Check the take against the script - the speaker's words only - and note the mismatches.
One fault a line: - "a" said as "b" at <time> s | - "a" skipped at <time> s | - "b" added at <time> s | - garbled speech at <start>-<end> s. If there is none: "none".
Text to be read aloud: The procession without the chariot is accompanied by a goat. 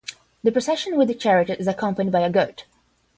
- "without" said as "with" at 1.0 s